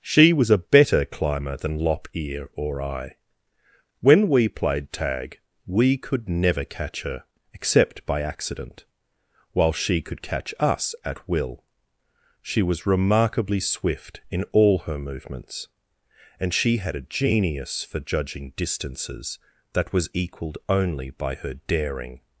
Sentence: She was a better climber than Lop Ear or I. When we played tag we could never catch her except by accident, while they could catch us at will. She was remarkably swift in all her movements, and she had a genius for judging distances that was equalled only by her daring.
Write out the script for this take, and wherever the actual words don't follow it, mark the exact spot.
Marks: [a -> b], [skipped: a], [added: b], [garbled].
She was a better climber than Lop Ear or I. When we played tag we could never catch her except by accident, while [they -> she] could catch us at will. She was remarkably swift in all her movements, and she had a genius for judging distances that was equalled only by her daring.